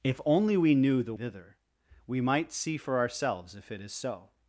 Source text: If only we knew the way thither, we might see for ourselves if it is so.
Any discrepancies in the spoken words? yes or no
yes